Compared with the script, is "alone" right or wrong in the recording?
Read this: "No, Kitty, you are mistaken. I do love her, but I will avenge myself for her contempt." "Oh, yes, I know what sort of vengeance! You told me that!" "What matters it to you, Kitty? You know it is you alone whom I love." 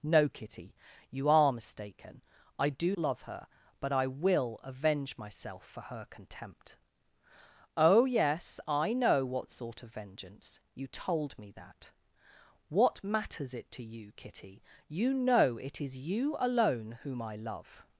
right